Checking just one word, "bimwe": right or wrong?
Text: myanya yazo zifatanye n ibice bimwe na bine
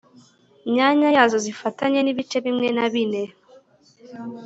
right